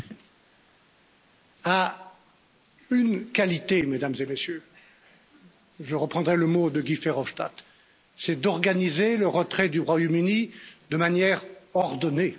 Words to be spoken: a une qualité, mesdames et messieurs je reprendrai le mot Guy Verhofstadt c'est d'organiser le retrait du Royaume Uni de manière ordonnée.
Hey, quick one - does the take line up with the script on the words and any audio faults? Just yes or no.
no